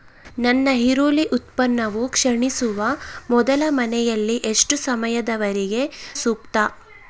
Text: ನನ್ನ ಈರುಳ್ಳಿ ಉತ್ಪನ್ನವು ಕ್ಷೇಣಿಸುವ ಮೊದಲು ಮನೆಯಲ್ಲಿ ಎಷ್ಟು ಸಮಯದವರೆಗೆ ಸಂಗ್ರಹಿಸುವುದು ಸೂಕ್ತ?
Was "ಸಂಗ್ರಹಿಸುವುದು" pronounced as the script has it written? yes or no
no